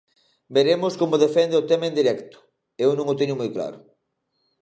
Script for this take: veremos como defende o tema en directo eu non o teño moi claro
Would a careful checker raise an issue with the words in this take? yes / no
no